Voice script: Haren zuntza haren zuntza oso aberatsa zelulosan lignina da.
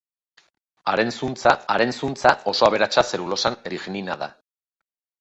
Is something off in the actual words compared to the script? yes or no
no